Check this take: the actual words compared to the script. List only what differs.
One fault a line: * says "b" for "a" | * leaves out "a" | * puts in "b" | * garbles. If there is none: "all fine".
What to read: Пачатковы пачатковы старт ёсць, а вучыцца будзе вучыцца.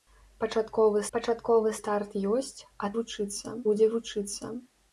all fine